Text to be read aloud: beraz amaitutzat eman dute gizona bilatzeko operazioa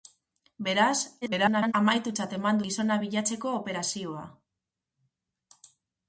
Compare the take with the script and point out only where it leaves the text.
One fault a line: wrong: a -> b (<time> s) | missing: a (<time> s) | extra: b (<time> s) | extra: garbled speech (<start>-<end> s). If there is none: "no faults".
extra: garbled speech (1.2-1.7 s)
missing: dute (2.6 s)